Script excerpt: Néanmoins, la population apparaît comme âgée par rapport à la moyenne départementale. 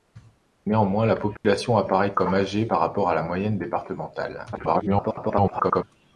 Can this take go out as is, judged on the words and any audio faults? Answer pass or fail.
fail